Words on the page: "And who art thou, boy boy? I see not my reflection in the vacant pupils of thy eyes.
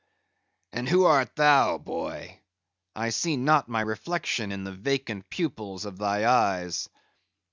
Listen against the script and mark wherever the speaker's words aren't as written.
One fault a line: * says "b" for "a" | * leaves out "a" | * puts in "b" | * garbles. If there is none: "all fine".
* leaves out "boy"